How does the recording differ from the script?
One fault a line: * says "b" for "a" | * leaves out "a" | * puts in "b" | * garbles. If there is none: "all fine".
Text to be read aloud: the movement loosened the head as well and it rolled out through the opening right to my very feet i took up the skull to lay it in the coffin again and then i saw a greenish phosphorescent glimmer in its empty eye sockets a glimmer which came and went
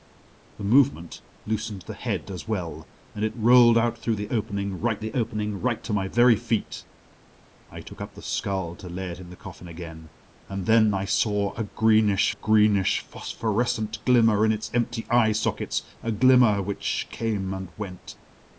* puts in "the opening right"
* puts in "greenish"